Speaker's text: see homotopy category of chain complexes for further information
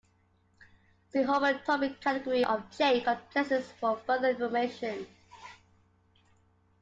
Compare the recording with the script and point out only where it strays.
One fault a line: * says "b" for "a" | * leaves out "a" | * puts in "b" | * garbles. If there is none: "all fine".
all fine